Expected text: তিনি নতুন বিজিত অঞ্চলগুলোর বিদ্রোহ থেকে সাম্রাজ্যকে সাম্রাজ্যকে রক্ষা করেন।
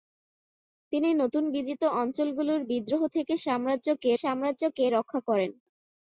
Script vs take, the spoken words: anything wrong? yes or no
no